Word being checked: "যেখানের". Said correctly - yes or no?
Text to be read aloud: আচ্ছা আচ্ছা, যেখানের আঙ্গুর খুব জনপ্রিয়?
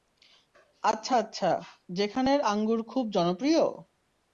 yes